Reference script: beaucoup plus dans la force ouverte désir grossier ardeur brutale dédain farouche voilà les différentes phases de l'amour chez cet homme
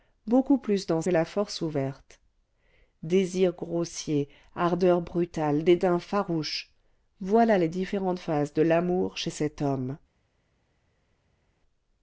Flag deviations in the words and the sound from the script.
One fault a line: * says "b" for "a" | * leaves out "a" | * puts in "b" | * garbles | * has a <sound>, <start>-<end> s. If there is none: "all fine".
all fine